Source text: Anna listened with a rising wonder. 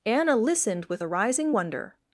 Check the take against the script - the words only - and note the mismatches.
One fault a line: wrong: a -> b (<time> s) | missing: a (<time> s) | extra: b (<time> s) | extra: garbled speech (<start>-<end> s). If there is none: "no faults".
no faults